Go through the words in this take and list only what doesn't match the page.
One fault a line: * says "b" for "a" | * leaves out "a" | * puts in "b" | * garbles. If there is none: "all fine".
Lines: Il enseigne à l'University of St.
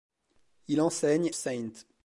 * leaves out "à l'University of"